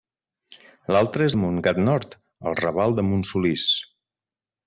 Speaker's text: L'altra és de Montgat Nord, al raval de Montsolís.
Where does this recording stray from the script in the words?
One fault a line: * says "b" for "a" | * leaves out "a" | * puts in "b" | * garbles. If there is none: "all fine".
all fine